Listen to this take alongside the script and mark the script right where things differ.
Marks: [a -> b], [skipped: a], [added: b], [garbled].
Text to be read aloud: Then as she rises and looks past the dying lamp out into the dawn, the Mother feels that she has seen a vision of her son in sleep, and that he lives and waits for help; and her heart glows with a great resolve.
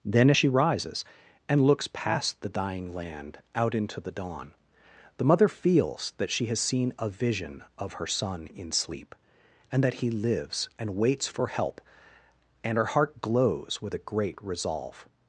Then as she rises and looks past the dying [lamp -> land] out into the dawn, the Mother feels that she has seen a vision of her son in sleep, and that he lives and waits for help; and her heart glows with a great resolve.